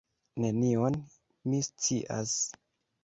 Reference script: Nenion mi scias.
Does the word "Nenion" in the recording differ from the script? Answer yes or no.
no